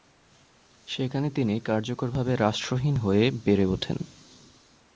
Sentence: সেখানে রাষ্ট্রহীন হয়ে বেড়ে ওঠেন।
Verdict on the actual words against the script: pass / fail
fail